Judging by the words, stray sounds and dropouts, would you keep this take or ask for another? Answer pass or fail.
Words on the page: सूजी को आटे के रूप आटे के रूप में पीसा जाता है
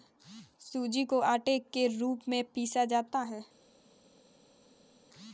fail